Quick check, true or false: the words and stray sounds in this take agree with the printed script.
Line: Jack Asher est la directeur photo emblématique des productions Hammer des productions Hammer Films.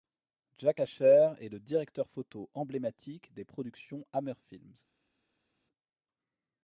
false